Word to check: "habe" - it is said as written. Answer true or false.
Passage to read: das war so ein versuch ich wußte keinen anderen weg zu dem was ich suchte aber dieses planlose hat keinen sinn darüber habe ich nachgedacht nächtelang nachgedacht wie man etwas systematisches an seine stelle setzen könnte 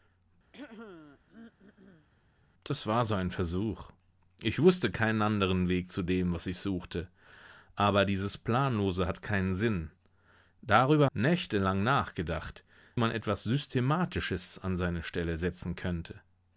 false